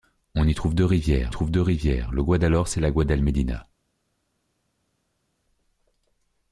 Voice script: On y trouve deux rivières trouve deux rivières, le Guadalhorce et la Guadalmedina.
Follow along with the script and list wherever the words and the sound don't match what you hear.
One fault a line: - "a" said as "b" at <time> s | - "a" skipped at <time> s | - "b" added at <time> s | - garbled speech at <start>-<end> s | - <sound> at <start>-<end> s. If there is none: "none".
none